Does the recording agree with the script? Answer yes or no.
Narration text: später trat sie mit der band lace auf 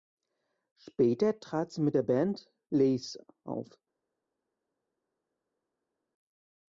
yes